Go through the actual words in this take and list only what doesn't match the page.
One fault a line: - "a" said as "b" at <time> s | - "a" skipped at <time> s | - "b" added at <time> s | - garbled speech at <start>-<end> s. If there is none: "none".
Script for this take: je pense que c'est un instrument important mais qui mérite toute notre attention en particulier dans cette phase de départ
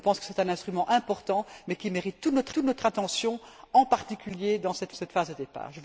- "toute notre" added at 2.5 s
- "cette" added at 4.9 s